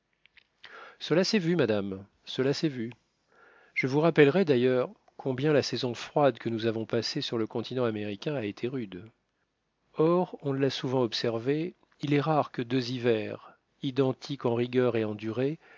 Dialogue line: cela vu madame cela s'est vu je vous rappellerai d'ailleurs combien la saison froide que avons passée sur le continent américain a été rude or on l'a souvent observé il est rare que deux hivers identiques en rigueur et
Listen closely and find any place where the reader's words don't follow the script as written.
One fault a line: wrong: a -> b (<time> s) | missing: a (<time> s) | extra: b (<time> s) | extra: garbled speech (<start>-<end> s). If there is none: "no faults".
extra: s'est (1.2 s)
extra: nous (6.5 s)